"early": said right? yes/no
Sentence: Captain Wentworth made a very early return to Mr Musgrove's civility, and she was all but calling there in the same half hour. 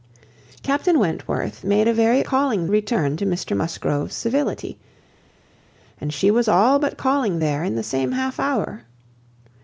no